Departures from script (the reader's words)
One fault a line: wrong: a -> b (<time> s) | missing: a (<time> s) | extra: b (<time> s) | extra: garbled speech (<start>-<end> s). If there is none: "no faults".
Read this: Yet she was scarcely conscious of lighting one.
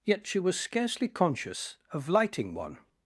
no faults